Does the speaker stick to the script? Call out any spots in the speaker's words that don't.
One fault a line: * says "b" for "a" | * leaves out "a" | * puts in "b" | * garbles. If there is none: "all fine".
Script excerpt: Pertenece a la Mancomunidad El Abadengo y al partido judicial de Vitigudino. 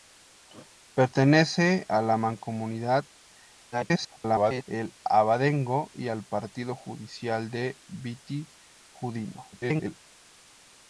* garbles
* garbles